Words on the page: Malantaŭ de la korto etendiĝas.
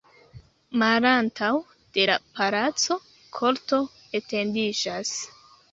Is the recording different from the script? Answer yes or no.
yes